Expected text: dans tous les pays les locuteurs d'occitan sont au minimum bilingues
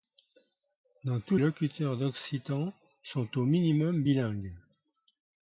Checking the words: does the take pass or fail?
fail